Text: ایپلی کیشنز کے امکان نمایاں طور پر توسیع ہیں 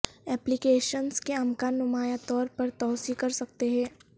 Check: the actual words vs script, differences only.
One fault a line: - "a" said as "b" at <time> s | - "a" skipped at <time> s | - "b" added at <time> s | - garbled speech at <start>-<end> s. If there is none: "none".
- "کر سکتے" added at 3.2 s